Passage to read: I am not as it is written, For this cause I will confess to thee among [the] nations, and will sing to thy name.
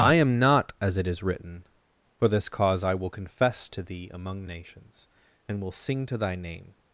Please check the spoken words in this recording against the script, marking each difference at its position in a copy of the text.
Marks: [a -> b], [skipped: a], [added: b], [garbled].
I am not as it is written, For this cause I will confess to thee among [skipped: [the]] nations, and will sing to thy name.